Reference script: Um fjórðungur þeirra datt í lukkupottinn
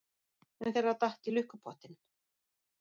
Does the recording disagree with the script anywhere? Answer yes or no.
yes